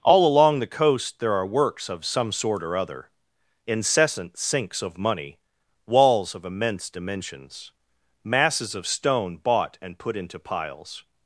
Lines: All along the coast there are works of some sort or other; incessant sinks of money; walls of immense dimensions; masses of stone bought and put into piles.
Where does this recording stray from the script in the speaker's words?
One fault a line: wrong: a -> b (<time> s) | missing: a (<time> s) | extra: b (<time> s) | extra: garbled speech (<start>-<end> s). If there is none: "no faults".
no faults